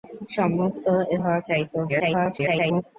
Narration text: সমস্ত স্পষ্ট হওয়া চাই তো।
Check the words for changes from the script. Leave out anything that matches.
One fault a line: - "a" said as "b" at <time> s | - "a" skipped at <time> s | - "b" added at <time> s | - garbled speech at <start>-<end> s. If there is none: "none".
- "স্পষ্ট" skipped at 0.9 s
- garbled speech at 1.9-2.8 s